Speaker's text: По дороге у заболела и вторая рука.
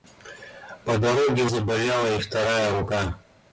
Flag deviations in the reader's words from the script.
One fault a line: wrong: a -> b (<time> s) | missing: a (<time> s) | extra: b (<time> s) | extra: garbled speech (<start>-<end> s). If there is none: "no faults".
no faults